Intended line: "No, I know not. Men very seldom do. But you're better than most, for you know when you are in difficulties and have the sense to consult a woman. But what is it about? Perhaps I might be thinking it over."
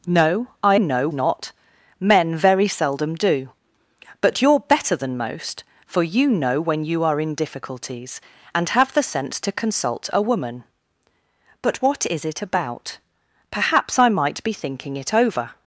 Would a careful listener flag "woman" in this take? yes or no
no